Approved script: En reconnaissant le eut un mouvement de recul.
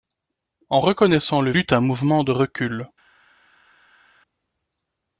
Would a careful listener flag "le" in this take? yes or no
no